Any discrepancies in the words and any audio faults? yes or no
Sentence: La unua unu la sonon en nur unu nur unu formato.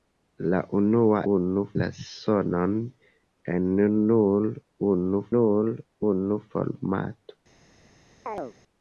yes